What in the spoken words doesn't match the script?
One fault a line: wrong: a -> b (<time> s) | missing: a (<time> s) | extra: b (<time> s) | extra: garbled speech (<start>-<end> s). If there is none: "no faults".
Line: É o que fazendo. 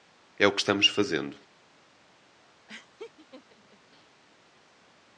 extra: estamos (0.6 s)